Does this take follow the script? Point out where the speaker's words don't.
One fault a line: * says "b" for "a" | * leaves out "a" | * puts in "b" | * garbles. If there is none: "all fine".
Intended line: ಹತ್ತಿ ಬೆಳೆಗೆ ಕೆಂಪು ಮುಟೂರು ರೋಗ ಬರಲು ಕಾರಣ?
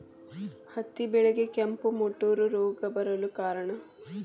all fine